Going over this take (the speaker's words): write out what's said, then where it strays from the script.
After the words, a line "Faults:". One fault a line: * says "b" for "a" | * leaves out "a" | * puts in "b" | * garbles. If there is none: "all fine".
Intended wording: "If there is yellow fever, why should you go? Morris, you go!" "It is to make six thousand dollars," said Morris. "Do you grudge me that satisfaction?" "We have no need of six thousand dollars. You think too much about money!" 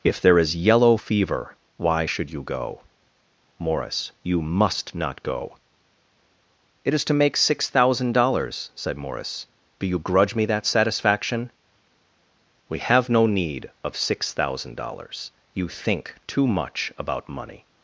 "If there is yellow fever, why should you go? Morris, you must not go!" "It is to make six thousand dollars," said Morris. "Do you grudge me that satisfaction?" "We have no need of six thousand dollars. You think too much about money!"
Faults:
* puts in "must not"